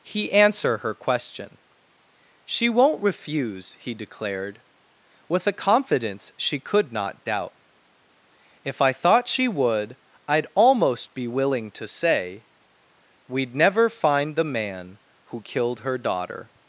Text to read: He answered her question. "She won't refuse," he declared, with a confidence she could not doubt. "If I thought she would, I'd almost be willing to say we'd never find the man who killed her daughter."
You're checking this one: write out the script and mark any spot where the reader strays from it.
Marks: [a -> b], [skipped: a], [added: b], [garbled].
He [answered -> answer] her question. "She won't refuse," he declared, with a confidence she could not doubt. "If I thought she would, I'd almost be willing to say we'd never find the man who killed her daughter."